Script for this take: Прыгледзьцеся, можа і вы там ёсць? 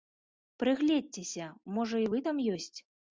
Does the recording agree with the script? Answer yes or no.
yes